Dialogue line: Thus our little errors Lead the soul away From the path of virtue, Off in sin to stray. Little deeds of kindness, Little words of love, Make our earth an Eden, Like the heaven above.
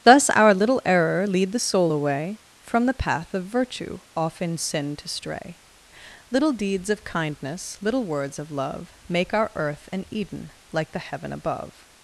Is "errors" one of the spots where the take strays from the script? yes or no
yes